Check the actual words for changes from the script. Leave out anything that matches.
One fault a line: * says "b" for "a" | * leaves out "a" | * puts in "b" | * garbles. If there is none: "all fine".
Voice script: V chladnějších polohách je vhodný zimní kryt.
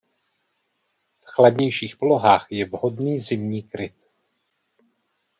all fine